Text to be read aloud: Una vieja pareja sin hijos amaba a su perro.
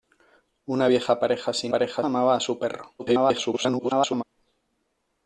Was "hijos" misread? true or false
true